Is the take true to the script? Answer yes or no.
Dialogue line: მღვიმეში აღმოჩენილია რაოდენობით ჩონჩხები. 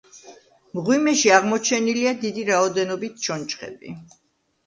no